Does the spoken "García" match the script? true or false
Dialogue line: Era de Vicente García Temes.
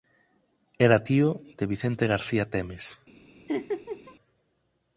true